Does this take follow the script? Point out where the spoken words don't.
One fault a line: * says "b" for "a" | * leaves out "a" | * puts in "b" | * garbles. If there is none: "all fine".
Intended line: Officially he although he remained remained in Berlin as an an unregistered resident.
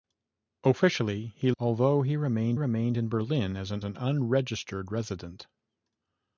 all fine